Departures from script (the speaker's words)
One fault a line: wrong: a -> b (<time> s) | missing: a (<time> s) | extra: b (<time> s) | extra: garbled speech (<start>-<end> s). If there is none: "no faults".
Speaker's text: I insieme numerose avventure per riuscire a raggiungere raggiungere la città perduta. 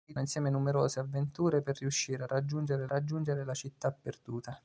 no faults